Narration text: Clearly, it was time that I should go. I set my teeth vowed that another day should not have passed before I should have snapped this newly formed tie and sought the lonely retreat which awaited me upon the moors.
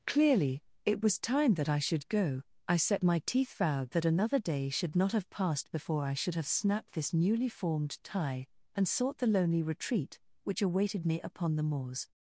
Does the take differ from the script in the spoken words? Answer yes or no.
no